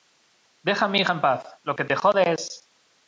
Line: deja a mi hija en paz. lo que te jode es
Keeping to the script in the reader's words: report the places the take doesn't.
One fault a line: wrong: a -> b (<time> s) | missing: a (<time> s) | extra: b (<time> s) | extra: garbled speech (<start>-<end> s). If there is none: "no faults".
no faults